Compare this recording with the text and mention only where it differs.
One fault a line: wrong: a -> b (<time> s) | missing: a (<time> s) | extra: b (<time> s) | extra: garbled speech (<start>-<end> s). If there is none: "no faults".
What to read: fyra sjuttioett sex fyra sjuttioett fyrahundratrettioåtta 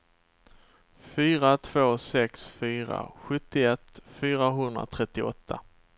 wrong: sjuttioett -> två (1.6 s)